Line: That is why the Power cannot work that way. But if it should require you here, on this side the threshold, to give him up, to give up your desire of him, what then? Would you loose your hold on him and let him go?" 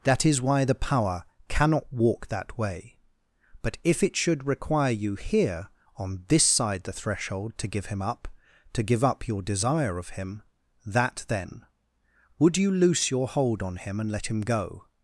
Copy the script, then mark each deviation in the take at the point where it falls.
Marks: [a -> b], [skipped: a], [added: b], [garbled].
That is why the Power cannot [work -> walk] that way. But if it should require you here, on this side the threshold, to give him up, to give up your desire of him, [what -> that] then? Would you loose your hold on him and let him go?"